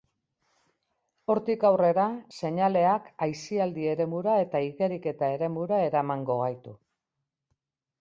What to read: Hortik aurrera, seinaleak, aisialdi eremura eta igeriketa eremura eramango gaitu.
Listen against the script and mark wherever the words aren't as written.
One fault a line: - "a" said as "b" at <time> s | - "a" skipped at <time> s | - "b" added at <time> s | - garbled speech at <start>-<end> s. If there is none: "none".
none